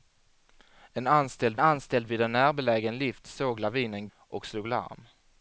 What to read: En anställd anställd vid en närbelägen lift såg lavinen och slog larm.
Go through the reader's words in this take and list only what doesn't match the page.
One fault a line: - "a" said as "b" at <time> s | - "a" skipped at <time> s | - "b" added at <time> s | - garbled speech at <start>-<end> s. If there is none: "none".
none